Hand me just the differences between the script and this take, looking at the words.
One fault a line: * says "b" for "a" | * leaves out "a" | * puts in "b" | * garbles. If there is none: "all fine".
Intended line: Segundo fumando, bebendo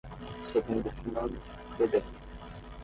all fine